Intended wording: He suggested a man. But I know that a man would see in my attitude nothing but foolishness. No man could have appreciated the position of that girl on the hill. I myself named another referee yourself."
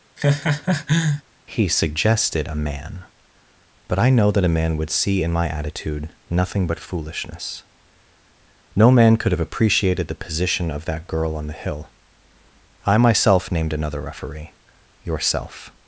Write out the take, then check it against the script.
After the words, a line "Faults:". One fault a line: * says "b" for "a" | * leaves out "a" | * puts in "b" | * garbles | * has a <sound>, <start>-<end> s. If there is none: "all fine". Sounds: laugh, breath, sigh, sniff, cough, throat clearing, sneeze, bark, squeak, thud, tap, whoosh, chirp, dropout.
He suggested a man. But I know that a man would see in my attitude nothing but foolishness. No man could have appreciated the position of that girl on the hill. I myself named another referee yourself."
Faults:
* has a laugh, 0.2-1.2 s